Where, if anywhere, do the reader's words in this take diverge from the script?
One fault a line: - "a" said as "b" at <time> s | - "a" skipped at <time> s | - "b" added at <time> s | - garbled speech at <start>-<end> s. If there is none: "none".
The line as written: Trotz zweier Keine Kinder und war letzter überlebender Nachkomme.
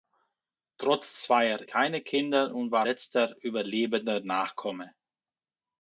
none